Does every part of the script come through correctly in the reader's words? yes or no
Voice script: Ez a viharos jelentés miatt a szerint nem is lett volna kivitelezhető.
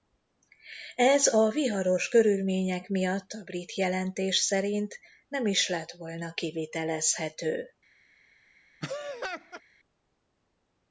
no